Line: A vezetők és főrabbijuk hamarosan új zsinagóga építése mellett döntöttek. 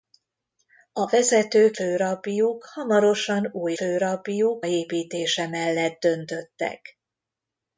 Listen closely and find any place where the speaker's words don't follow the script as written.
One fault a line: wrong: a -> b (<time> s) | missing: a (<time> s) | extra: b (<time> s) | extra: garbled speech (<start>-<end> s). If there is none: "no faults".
missing: és (1.8 s)
wrong: zsinagóga -> főrabbijuk (3.7 s)